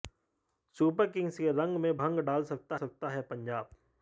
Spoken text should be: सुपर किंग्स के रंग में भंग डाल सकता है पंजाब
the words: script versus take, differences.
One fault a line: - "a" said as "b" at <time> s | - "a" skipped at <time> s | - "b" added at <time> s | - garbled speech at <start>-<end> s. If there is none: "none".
- "सकता" added at 2.7 s